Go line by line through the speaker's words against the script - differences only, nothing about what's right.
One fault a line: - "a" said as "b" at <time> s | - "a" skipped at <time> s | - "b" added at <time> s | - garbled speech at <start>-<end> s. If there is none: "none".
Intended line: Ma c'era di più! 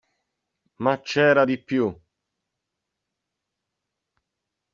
none